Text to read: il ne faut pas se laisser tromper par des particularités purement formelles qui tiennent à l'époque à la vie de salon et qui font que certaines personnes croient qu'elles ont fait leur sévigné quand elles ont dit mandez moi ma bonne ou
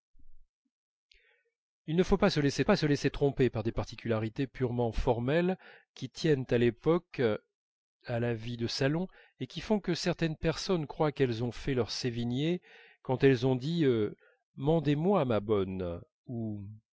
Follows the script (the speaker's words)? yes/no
no